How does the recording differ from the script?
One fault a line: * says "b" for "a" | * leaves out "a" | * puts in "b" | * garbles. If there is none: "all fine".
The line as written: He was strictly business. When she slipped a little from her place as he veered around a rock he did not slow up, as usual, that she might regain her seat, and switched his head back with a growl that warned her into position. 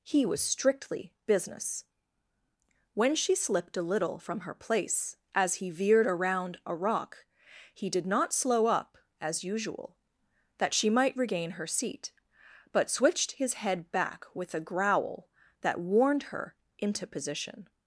* says "but" for "and"